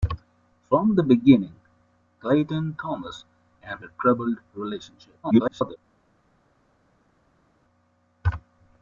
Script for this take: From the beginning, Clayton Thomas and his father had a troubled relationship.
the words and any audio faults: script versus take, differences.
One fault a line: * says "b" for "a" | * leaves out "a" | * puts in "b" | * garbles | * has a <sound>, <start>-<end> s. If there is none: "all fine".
* leaves out "his father had"
* garbles